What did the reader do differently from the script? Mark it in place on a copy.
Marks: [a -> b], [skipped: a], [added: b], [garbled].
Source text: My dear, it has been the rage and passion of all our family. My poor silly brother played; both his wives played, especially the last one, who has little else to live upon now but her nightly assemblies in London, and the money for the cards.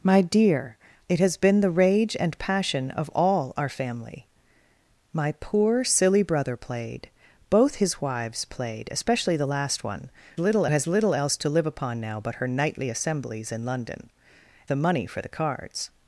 My dear, it has been the rage and passion of all our family. My poor silly brother played; both his wives played, especially the last one, [who -> little] has little else to live upon now but her nightly assemblies in London, [skipped: and] the money for the cards.